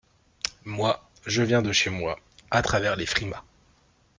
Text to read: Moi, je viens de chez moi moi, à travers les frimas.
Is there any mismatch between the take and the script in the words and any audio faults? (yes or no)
yes